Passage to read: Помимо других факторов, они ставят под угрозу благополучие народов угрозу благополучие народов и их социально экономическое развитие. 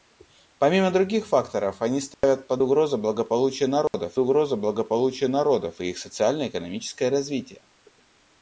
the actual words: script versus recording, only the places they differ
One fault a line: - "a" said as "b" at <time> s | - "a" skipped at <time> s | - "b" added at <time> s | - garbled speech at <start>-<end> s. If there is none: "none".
none